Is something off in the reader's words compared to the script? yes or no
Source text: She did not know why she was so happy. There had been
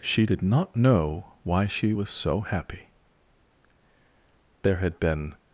no